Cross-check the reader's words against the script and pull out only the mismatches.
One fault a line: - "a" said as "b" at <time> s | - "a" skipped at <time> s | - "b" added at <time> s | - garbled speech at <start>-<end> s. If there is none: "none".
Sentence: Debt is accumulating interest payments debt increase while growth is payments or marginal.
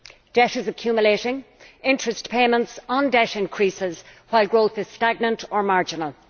- "on" added at 2.9 s
- "payments" said as "stagnant" at 4.9 s